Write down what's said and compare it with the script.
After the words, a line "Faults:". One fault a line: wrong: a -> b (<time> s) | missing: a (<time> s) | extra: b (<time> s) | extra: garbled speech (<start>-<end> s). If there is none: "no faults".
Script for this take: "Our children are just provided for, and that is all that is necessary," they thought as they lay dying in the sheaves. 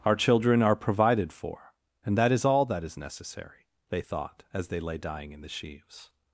"Our children are provided for, and that is all that is necessary," they thought as they lay dying in the sheaves.
Faults:
missing: just (0.8 s)